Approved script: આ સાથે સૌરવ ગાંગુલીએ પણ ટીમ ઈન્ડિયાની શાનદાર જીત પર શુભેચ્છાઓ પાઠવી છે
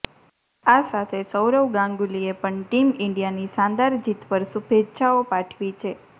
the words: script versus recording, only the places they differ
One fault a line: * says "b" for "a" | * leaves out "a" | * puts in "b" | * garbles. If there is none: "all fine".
all fine